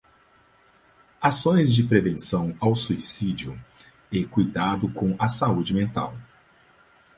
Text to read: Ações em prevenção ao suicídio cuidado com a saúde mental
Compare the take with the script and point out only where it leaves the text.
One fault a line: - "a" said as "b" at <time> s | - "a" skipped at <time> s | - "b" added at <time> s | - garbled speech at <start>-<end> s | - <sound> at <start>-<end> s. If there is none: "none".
- "em" said as "de" at 1.7 s
- "e" added at 4.1 s